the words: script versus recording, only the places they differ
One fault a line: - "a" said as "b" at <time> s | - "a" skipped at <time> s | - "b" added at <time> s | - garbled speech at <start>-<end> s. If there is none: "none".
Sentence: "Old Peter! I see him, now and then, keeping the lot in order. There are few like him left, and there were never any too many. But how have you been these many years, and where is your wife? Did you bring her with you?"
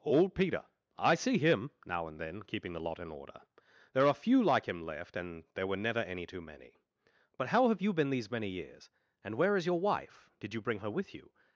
none